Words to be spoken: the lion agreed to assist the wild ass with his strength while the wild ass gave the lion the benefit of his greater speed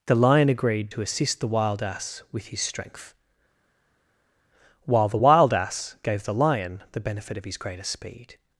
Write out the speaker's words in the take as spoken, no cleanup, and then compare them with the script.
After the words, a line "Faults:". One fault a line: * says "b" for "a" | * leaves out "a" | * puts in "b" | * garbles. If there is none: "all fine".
the lion agreed to assist the wild ass with his strength while the wild ass gave the lion the benefit of his greater speed
Faults:
all fine